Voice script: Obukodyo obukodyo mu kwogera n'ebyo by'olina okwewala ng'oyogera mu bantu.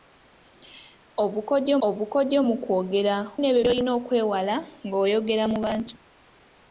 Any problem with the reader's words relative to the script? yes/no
no